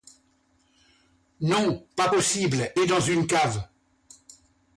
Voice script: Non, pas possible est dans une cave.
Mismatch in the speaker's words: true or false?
false